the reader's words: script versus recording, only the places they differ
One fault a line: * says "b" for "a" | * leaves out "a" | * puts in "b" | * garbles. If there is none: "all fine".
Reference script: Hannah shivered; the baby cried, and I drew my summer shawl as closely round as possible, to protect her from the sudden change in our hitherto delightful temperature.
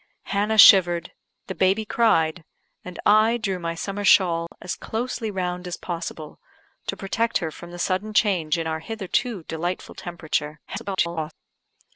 * garbles